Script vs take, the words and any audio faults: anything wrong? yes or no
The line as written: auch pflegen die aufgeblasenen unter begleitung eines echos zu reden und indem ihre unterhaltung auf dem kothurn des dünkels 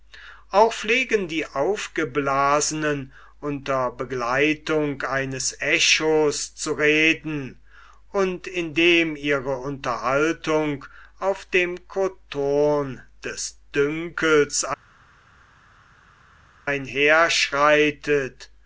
no